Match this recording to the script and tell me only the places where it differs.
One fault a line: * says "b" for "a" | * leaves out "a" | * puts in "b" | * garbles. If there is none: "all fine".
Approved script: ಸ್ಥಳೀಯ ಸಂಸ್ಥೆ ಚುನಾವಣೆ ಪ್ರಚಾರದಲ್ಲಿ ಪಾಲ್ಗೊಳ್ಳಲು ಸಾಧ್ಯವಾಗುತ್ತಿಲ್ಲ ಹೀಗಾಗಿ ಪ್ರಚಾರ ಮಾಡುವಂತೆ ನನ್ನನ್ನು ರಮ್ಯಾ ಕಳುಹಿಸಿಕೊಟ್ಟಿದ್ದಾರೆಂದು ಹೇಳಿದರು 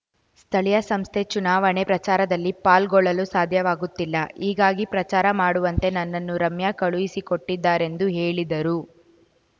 all fine